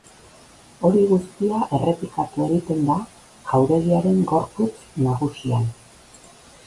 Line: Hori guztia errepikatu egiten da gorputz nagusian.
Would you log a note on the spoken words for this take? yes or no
yes